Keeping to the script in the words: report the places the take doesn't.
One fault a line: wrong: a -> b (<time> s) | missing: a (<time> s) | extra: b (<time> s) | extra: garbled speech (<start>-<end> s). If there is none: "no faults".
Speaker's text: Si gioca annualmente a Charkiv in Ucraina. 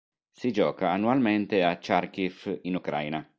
no faults